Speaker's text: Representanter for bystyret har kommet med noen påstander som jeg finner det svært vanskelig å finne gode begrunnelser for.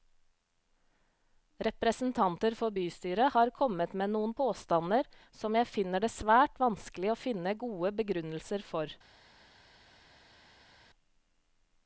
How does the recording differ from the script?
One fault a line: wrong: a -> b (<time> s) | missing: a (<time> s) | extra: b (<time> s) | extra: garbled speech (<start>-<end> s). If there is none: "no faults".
no faults